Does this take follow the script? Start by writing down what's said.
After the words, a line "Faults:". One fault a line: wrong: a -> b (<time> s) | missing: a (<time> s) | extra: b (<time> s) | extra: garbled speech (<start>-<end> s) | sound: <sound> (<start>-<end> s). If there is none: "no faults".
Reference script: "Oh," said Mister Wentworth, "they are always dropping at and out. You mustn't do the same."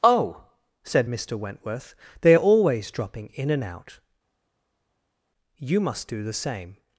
"Oh," said Mister Wentworth, "they are always dropping in and out. You must do the same."
Faults:
wrong: at -> in (3.3 s)
wrong: mustn't -> must (5.8 s)